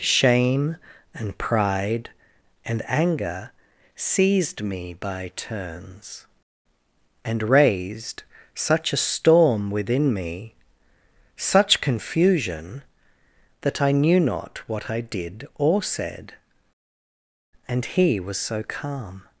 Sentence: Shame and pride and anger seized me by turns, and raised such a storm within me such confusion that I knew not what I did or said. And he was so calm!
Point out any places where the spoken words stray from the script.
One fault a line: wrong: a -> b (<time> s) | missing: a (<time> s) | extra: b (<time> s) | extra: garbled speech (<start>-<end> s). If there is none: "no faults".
no faults